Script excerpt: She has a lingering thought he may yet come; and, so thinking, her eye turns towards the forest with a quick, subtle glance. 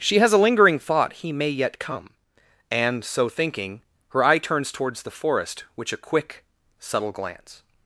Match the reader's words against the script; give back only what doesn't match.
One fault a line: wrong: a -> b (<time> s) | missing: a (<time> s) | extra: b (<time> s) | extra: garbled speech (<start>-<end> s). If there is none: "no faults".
wrong: with -> which (5.8 s)